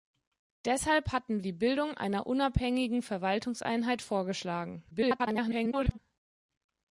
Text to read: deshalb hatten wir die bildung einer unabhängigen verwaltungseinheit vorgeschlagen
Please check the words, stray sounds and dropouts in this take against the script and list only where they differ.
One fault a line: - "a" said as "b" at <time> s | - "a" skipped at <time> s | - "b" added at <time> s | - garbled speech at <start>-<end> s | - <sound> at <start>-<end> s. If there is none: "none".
- "wir" skipped at 1.4 s
- garbled speech at 4.9-6.0 s